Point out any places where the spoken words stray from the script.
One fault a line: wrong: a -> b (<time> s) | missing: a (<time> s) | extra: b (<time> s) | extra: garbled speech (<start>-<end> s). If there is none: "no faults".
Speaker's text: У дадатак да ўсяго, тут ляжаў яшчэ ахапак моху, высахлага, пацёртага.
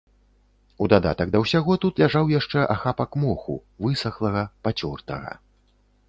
no faults